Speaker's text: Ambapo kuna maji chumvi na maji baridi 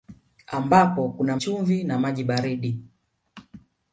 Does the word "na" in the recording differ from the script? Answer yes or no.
no